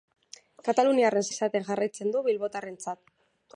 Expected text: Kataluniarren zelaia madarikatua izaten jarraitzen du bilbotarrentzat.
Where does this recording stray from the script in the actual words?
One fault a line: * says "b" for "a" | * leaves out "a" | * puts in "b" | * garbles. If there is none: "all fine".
* leaves out "zelaia madarikatua"